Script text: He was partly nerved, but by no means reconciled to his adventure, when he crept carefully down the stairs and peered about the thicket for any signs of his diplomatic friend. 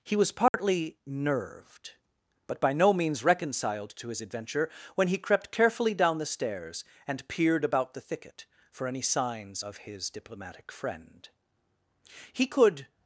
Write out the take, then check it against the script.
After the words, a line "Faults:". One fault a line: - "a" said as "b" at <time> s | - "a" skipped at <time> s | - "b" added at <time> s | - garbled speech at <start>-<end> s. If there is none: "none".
He was partly nerved, but by no means reconciled to his adventure, when he crept carefully down the stairs and peered about the thicket for any signs of his diplomatic friend. He could
Faults:
- "He could" added at 12.3 s